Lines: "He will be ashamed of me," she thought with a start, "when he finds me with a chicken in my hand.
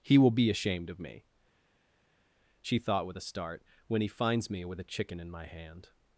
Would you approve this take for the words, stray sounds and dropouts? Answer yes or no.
yes